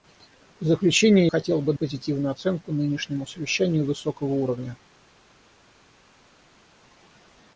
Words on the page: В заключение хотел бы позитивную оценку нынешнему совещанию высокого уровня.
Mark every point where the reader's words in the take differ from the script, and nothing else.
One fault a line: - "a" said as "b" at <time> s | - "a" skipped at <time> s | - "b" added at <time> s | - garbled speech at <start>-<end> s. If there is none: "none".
none